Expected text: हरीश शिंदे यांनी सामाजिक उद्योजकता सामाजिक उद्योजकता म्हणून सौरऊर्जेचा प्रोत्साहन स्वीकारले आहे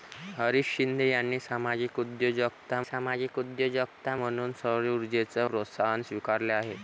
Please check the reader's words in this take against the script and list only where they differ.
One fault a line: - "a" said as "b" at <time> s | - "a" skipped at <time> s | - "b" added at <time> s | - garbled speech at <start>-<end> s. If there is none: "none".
none